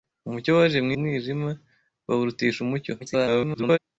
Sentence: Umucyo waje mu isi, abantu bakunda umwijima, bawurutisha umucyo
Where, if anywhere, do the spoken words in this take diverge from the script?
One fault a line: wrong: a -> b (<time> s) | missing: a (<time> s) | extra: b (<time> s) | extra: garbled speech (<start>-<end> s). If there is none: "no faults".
missing: isi abantu bakunda (0.9 s)
extra: garbled speech (3.0-3.8 s)